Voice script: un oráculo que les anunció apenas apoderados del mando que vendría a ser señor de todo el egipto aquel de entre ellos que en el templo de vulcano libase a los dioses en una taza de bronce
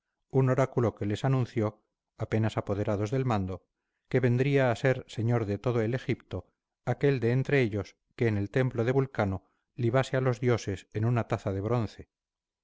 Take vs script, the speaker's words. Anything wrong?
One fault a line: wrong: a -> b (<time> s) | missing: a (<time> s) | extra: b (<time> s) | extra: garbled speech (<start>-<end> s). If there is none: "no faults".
no faults